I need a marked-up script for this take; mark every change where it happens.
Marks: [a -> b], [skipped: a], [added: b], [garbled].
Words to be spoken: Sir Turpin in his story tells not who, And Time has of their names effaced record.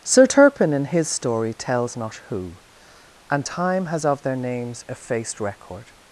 Sir Turpin in his story tells not who, And Time has of their names effaced record.